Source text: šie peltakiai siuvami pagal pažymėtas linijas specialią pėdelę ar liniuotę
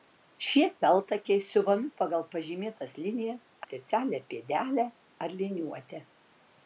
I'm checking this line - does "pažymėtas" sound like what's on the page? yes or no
yes